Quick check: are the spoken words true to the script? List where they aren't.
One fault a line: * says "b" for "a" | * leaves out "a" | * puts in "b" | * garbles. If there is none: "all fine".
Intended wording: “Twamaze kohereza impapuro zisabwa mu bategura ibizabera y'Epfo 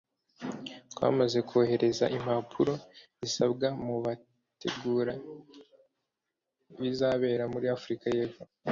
* puts in "muri Afurika"